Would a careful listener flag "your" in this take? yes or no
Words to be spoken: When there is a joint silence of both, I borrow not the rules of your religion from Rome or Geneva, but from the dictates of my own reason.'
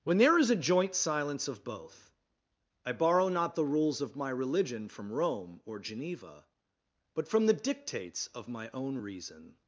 yes